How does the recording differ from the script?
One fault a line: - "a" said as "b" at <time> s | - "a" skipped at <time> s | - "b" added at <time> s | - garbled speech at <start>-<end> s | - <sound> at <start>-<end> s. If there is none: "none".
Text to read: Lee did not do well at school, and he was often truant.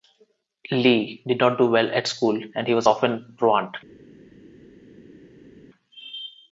none